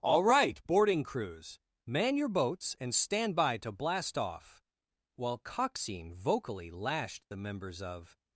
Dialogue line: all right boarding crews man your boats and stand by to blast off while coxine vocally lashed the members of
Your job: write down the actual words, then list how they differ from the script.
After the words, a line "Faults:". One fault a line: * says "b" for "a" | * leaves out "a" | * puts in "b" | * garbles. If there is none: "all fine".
all right boarding crews man your boats and stand by to blast off while coxine vocally lashed the members of
Faults:
all fine